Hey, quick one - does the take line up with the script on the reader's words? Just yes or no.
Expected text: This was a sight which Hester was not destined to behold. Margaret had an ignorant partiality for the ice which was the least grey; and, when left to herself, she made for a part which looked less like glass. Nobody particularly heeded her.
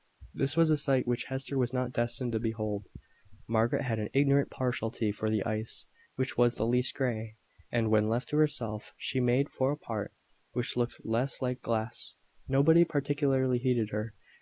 yes